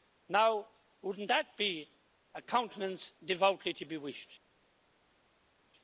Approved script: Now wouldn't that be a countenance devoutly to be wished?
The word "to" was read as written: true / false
true